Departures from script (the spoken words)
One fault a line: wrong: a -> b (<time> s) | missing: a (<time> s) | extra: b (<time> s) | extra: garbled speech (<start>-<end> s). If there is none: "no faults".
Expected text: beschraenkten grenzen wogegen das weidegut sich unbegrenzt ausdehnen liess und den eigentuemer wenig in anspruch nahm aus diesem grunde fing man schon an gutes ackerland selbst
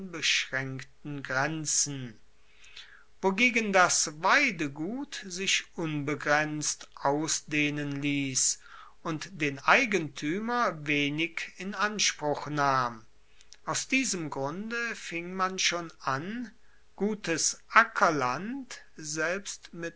no faults